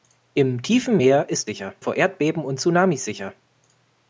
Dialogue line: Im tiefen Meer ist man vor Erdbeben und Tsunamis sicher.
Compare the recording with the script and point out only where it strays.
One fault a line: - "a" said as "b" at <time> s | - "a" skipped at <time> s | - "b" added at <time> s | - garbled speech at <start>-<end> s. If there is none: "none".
- "man" said as "sicher" at 1.4 s